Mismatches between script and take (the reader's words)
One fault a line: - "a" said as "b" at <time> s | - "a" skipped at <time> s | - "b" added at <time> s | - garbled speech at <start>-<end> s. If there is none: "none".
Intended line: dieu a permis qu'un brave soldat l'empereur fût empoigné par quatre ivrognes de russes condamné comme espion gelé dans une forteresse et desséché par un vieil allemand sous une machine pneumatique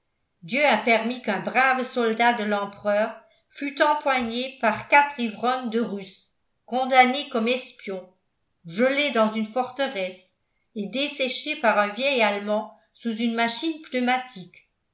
- "de" added at 2.3 s